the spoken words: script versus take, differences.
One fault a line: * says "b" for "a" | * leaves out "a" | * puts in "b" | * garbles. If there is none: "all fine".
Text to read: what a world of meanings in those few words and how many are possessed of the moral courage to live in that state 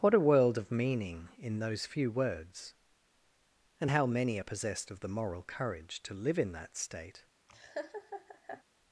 * says "meaning" for "meanings"